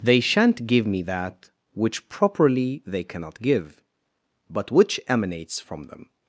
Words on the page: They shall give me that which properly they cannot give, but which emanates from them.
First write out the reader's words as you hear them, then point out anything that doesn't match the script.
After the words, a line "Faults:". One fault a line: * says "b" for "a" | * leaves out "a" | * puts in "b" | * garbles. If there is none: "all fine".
They shan't give me that which properly they cannot give, but which emanates from them.
Faults:
* says "shan't" for "shall"